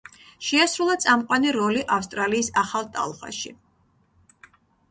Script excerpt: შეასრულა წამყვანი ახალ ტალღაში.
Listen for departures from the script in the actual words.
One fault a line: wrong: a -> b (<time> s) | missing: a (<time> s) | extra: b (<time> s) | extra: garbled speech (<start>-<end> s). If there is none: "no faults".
extra: როლი ავსტრალიის (1.6 s)